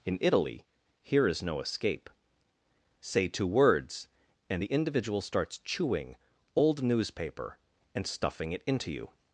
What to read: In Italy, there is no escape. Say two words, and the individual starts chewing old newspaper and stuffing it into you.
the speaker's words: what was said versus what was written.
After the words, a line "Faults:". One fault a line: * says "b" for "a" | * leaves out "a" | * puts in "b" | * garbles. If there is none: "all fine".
In Italy, here is no escape. Say two words, and the individual starts chewing old newspaper and stuffing it into you.
Faults:
* says "here" for "there"